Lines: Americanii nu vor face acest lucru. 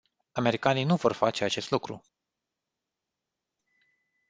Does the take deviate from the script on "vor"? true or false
false